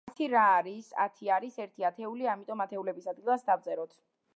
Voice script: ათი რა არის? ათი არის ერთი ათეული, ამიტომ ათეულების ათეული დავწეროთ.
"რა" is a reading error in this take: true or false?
false